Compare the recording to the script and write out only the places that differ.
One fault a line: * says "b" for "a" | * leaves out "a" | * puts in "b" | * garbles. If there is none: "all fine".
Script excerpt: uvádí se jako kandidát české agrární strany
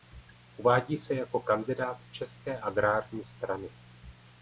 all fine